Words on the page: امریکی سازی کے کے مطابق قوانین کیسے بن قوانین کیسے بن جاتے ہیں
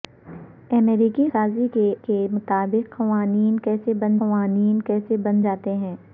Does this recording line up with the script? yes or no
yes